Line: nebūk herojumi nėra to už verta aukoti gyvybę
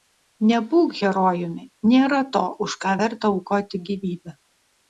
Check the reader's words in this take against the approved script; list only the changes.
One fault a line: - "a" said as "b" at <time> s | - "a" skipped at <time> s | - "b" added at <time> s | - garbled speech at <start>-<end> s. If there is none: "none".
- "ką" added at 2.8 s